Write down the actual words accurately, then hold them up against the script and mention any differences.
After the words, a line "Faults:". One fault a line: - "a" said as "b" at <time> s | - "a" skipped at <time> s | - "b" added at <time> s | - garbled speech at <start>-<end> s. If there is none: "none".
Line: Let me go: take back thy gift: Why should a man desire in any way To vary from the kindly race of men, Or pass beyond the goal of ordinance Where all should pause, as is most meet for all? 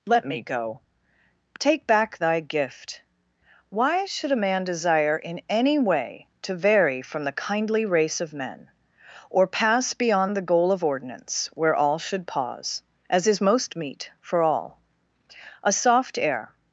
Let me go: take back thy gift: Why should a man desire in any way To vary from the kindly race of men, Or pass beyond the goal of ordinance Where all should pause, as is most meet for all? A soft air
Faults:
- "A soft air" added at 15.6 s